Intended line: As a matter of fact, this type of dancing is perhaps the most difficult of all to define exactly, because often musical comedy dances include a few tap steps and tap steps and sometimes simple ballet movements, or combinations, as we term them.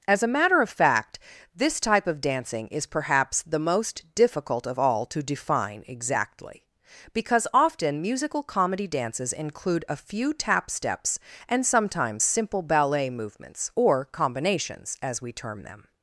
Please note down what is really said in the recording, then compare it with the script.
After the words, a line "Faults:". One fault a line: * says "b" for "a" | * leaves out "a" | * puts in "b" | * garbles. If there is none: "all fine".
As a matter of fact, this type of dancing is perhaps the most difficult of all to define exactly, because often musical comedy dances include a few tap steps and sometimes simple ballet movements, or combinations, as we term them.
Faults:
* leaves out "tap steps and"